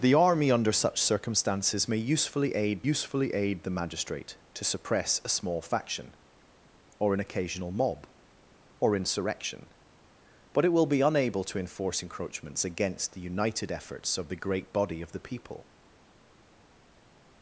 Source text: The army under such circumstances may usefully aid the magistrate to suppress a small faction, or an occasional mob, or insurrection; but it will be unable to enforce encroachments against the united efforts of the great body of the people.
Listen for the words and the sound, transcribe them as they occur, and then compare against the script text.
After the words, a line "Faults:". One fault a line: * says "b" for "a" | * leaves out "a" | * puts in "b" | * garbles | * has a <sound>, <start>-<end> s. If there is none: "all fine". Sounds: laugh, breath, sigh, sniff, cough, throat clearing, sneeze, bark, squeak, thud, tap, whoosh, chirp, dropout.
The army under such circumstances may usefully aid usefully aid the magistrate to suppress a small faction, or an occasional mob, or insurrection; but it will be unable to enforce encroachments against the united efforts of the great body of the people.
Faults:
* puts in "usefully aid"